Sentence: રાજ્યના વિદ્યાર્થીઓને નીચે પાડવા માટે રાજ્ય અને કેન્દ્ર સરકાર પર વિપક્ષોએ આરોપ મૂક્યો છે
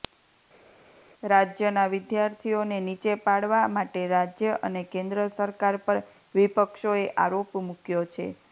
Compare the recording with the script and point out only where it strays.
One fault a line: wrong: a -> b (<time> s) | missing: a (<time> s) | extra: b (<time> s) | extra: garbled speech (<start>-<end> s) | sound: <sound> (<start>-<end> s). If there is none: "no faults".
no faults